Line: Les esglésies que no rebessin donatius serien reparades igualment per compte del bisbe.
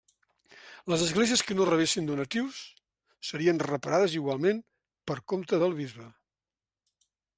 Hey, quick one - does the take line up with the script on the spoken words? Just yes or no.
yes